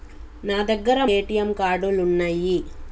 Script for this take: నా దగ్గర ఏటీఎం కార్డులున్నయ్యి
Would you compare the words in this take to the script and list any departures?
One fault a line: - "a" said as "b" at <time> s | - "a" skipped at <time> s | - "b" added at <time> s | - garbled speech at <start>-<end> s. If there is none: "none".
none